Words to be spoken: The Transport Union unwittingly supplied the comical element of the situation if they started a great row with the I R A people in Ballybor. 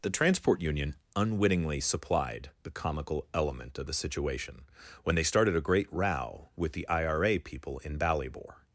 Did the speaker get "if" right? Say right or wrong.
wrong